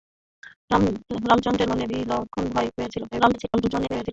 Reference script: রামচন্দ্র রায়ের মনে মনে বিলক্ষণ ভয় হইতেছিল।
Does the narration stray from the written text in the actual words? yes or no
yes